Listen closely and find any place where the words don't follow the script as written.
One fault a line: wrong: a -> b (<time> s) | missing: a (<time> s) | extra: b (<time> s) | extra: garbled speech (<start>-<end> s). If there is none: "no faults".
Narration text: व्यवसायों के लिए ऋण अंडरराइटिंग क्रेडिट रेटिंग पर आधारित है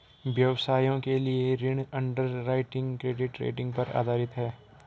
no faults